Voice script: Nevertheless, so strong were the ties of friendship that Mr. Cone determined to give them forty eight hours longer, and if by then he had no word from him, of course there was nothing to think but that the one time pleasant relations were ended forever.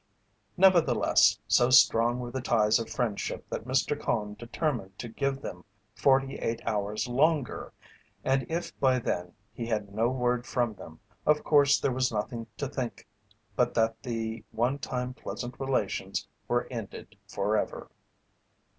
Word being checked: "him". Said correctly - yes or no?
no